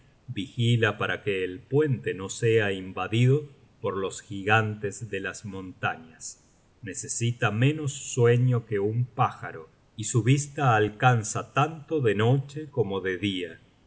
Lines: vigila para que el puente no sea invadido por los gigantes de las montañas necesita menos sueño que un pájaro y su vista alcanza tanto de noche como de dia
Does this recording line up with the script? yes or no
yes